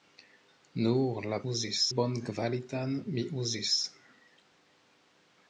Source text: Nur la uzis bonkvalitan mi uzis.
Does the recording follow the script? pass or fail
pass